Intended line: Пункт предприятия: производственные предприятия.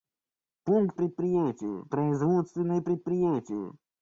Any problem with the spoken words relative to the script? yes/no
no